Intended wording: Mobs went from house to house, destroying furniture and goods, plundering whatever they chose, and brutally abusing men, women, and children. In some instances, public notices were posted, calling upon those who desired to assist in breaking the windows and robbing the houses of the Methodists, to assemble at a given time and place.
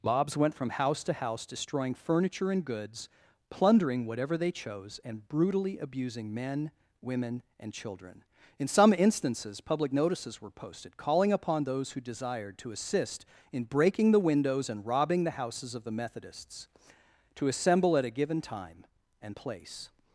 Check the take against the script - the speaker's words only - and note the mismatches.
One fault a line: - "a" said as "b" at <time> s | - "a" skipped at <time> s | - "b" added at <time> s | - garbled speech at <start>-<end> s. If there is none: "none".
none